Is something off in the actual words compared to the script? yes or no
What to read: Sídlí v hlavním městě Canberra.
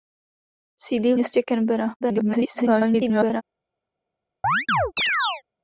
yes